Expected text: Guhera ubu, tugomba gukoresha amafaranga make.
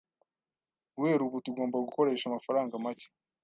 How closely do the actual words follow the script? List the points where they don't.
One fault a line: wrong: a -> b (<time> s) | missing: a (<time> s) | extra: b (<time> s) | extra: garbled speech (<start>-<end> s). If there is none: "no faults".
no faults